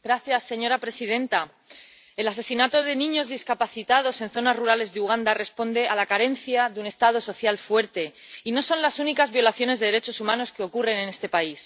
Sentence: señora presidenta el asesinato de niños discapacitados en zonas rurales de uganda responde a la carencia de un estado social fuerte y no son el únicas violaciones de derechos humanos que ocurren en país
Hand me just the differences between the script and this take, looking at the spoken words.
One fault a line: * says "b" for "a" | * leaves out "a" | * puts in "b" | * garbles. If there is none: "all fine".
* says "las" for "el"
* puts in "este"